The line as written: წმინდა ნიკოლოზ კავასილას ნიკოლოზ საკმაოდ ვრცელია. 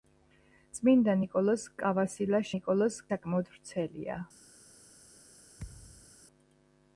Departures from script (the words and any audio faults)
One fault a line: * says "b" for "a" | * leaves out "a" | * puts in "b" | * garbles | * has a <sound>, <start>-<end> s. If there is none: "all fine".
* has a thud, 5.6-6.2 s